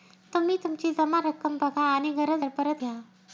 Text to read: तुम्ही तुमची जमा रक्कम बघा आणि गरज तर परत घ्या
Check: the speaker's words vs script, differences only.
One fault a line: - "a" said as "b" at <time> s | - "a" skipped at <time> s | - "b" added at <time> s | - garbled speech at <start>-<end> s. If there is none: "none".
none